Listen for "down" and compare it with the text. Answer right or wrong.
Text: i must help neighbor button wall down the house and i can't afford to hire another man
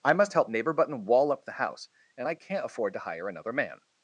wrong